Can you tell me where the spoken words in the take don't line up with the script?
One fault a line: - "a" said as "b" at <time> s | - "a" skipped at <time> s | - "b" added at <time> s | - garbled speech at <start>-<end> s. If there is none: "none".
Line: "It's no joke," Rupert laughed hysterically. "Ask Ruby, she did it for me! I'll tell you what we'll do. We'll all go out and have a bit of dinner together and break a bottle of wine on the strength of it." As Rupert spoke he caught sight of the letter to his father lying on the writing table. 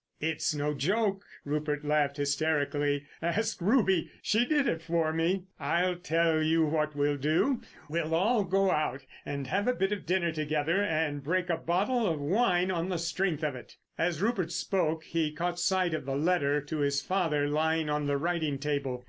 none